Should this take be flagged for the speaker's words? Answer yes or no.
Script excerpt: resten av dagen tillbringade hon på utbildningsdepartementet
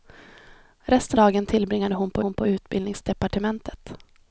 yes